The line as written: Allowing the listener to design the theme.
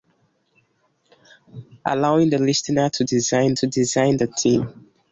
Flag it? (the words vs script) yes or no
yes